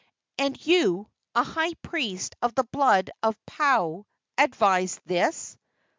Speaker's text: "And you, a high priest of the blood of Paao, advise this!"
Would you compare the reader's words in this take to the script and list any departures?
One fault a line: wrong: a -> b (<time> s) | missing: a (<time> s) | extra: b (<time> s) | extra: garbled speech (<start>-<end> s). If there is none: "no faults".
no faults